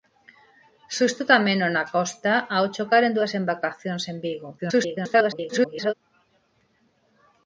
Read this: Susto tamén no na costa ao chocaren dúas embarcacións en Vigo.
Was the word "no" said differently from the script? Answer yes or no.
no